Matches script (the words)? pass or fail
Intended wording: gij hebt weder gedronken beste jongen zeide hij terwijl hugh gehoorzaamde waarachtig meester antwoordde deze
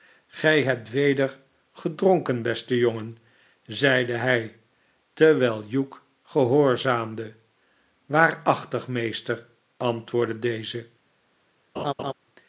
pass